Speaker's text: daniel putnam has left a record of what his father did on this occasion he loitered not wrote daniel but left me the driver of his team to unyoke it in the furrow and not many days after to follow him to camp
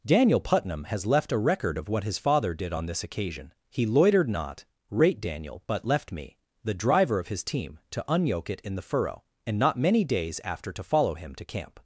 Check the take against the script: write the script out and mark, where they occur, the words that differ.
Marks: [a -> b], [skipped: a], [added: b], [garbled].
daniel putnam has left a record of what his father did on this occasion he loitered not [wrote -> rate] daniel but left me the driver of his team to unyoke it in the furrow and not many days after to follow him to camp